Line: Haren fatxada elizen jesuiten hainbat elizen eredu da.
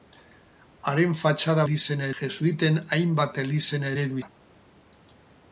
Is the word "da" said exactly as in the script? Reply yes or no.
yes